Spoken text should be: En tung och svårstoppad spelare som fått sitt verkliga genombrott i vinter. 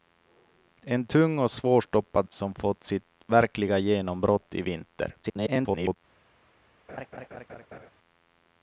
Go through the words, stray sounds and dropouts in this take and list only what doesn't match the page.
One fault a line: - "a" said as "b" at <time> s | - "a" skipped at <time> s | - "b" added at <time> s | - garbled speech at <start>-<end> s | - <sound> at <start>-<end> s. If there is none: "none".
- "spelare" skipped at 2.3 s
- garbled speech at 5.2-6.0 s
- laugh at 6.9-7.9 s